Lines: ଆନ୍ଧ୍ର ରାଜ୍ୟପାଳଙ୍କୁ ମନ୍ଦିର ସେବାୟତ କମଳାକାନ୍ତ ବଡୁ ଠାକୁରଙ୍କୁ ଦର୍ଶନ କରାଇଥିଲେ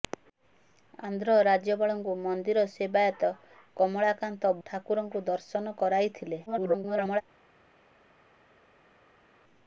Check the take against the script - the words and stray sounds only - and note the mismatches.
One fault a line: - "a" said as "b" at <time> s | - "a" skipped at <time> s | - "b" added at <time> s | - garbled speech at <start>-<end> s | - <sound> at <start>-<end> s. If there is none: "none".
- "ବଡୁ" skipped at 4.5 s
- garbled speech at 6.5-7.2 s